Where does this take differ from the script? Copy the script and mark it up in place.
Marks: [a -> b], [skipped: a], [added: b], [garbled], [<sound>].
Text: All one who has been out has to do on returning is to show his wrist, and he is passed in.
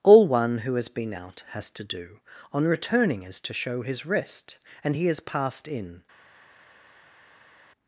All one who has been out has to do on returning is to show his wrist, and he is passed in.